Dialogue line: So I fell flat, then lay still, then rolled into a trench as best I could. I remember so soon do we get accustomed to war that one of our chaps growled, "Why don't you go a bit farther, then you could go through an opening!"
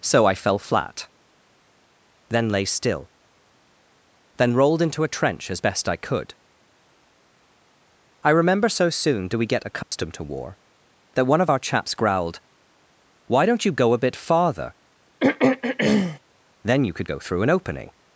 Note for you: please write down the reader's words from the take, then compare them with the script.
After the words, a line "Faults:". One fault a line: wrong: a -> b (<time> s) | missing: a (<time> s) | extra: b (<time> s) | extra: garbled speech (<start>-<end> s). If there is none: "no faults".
So I fell flat, then lay still, then rolled into a trench as best I could. I remember so soon do we get accustomed to war that one of our chaps growled, "Why don't you go a bit farther, then you could go through an opening!"
Faults:
no faults